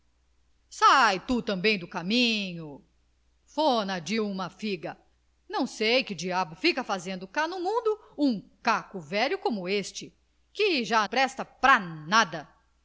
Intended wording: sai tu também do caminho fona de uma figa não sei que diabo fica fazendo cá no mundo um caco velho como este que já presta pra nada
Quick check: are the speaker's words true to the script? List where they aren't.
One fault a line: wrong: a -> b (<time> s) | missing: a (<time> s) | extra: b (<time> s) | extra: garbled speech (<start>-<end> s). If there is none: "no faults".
no faults